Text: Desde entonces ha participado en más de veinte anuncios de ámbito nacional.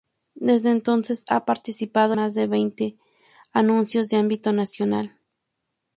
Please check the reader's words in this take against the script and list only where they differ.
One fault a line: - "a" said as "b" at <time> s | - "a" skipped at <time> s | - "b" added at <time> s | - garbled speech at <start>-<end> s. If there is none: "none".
- "en" skipped at 2.1 s